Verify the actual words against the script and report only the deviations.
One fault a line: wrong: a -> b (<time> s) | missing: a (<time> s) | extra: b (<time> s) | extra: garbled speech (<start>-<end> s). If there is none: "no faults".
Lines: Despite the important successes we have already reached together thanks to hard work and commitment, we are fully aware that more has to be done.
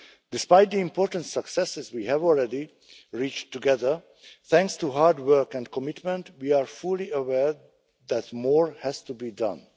no faults